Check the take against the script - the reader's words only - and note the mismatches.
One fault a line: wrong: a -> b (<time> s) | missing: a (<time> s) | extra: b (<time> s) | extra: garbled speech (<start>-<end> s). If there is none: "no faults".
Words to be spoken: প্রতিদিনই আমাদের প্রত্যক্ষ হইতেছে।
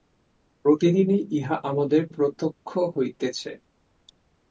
extra: ইহা (1.4 s)